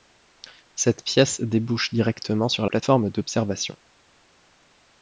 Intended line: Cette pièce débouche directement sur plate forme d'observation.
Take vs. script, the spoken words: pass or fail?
pass